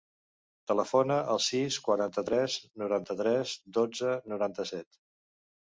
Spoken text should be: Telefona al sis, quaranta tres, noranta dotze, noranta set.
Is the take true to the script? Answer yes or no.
no